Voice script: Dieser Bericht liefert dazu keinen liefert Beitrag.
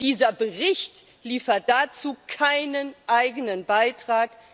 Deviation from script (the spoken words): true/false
true